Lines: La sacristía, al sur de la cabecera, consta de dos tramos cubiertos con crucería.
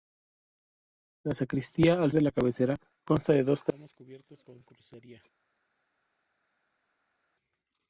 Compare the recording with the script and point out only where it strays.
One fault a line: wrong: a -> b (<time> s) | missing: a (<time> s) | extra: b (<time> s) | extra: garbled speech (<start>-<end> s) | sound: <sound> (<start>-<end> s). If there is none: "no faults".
missing: sur (2.1 s)